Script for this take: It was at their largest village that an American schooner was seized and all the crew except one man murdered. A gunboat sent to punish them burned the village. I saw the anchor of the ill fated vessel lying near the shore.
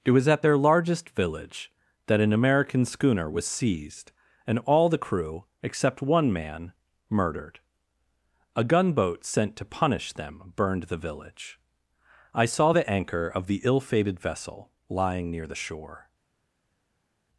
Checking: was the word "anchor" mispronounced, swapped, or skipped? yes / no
no